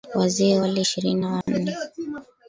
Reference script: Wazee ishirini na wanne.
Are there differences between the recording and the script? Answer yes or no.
yes